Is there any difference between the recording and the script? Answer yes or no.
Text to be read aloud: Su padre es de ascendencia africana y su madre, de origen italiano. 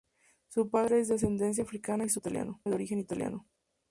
yes